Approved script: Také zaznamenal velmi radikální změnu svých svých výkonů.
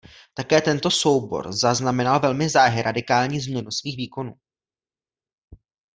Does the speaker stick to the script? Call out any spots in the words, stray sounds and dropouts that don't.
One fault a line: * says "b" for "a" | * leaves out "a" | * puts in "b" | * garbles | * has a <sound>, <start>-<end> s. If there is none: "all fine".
* puts in "tento soubor"
* puts in "záhy"
* leaves out "svých"